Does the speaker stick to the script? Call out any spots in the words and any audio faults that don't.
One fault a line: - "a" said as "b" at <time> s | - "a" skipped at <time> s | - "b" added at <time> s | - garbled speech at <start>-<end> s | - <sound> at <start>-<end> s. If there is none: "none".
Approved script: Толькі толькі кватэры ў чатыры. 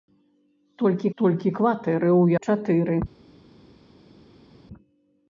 none